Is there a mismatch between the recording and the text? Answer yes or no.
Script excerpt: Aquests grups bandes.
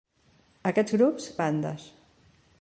no